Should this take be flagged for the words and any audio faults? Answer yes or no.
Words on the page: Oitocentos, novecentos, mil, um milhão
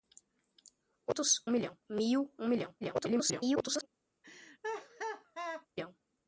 yes